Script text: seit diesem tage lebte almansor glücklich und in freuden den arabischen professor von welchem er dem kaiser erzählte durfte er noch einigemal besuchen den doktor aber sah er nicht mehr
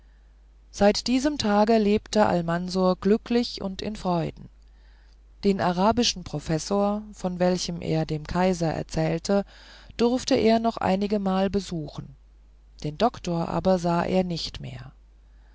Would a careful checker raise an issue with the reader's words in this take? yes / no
no